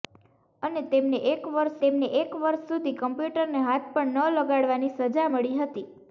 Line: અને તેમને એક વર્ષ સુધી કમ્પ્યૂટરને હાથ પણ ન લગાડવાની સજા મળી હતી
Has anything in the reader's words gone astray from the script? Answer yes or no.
yes